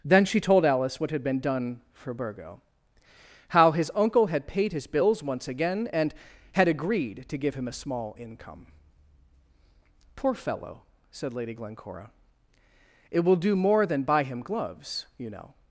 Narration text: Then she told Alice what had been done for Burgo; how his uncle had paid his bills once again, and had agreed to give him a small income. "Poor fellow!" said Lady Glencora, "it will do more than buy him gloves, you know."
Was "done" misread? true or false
false